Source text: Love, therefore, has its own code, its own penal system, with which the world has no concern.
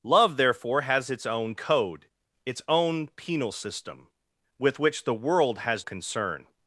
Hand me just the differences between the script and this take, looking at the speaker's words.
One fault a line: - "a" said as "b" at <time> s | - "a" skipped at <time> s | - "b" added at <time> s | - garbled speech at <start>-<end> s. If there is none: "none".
- "no" skipped at 5.8 s